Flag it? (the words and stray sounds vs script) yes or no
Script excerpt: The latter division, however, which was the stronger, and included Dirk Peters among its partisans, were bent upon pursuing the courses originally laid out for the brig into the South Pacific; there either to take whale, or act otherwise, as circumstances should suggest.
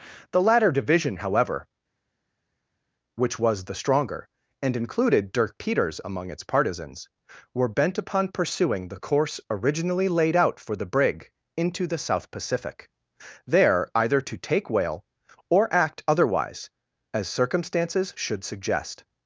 yes